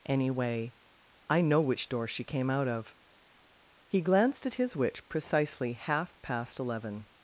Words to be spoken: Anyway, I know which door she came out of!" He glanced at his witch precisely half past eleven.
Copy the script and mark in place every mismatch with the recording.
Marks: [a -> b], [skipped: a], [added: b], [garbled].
Anyway, I know which door she came out of!" He glanced at his witch precisely half past eleven.